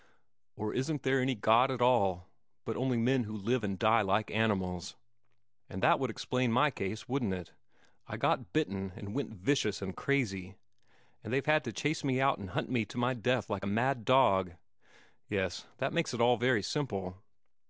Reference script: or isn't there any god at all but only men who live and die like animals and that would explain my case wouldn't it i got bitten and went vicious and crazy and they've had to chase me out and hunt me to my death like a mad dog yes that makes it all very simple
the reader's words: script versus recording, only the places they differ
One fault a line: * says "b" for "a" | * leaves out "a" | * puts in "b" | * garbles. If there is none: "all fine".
all fine